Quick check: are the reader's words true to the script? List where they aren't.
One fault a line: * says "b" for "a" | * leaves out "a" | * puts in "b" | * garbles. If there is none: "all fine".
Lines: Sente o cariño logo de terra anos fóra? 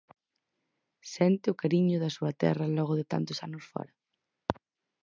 * puts in "da súa terra"
* says "tantos" for "terra"